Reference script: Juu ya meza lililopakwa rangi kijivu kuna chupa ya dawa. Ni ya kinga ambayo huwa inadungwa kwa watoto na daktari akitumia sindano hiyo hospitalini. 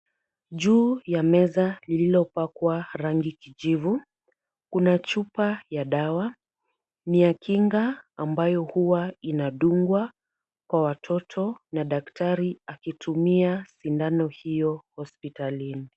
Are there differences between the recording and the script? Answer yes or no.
no